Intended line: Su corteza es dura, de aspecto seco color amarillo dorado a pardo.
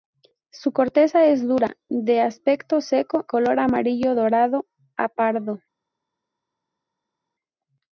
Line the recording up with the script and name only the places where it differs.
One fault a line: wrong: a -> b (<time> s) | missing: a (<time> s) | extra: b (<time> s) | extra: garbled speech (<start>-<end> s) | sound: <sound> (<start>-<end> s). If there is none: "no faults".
no faults